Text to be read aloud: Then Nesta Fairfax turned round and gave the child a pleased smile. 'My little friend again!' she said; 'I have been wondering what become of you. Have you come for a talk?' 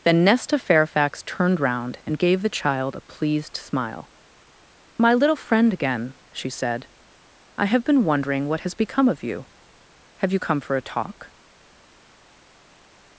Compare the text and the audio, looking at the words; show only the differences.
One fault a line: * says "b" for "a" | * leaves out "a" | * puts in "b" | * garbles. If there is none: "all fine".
* puts in "has"